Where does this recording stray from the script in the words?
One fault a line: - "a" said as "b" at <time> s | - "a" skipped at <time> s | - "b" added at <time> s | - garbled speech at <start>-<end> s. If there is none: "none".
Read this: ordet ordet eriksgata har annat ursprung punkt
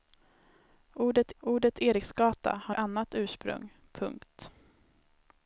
none